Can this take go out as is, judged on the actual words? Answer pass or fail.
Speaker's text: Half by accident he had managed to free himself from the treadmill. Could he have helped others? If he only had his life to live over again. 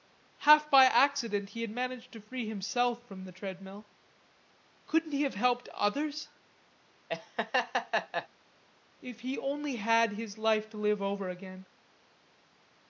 fail